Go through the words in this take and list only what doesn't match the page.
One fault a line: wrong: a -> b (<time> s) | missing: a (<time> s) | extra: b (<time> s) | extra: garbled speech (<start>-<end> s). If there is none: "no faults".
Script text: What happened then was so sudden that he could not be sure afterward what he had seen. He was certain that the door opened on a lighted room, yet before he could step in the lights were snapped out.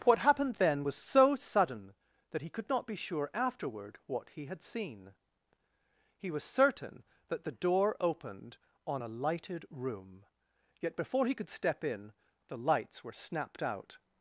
no faults